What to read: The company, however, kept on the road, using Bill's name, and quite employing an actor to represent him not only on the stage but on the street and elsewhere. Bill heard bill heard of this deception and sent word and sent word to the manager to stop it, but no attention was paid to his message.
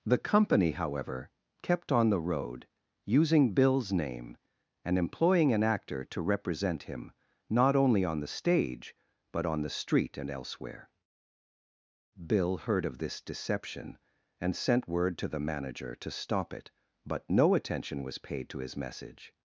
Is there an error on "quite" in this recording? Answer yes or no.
yes